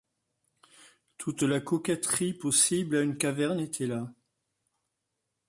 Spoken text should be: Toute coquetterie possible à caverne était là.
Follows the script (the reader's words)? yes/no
no